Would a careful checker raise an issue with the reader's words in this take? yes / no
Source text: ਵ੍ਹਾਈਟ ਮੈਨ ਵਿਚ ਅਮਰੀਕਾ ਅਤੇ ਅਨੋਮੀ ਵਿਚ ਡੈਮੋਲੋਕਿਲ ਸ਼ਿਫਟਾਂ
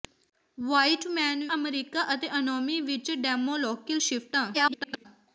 yes